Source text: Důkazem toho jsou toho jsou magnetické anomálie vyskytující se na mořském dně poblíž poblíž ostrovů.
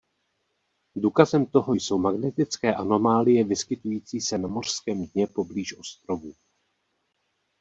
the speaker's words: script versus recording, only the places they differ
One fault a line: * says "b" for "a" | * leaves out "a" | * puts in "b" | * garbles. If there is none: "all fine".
* leaves out "toho jsou"
* leaves out "poblíž"